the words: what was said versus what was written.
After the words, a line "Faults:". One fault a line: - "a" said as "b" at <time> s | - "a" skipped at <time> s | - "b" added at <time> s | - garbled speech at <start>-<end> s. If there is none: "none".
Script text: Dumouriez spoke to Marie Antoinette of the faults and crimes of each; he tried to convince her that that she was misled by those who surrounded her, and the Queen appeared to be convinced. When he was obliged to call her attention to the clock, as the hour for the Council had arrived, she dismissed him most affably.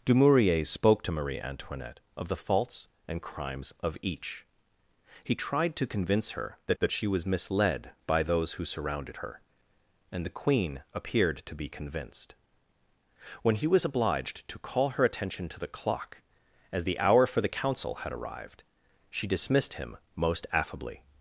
Dumouriez spoke to Marie Antoinette of the faults and crimes of each; he tried to convince her that that she was misled by those who surrounded her, and the Queen appeared to be convinced. When he was obliged to call her attention to the clock, as the hour for the Council had arrived, she dismissed him most affably.
Faults:
none